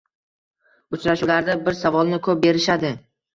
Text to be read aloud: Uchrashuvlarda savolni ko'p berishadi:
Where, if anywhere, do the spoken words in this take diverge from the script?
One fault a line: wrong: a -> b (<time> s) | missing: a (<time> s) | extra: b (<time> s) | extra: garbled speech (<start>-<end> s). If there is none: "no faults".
extra: bir (1.7 s)